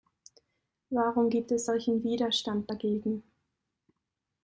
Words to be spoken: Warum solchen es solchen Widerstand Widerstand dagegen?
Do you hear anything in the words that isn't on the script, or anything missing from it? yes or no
yes